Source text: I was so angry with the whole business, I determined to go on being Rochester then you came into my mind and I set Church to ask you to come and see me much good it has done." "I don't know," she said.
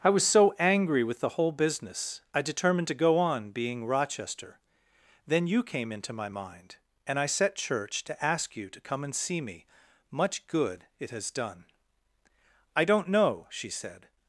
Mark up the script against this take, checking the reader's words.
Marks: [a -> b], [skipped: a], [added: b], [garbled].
I was so angry with the whole business, I determined to go on being Rochester then you came into my mind and I set Church to ask you to come and see me much good it has done." "I don't know," she said.